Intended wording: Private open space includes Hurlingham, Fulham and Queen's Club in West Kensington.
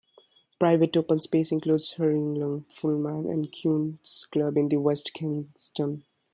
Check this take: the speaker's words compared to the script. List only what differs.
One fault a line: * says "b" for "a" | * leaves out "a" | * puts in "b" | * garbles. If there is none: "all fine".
all fine